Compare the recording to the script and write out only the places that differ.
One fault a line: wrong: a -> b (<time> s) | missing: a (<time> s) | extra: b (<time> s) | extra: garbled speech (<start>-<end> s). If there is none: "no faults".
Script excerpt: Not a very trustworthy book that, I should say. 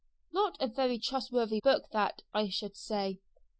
no faults